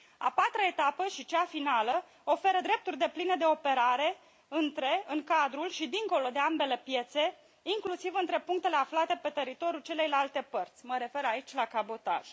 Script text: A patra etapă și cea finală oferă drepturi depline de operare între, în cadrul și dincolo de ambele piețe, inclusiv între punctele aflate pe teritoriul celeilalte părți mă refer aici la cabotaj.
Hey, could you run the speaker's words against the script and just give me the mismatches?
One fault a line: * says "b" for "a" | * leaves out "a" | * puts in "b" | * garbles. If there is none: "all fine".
all fine